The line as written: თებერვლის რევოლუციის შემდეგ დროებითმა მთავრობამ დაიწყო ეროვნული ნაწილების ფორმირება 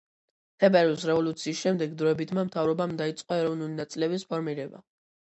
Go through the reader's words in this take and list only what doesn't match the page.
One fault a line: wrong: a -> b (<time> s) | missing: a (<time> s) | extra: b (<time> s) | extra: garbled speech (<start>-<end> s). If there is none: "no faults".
no faults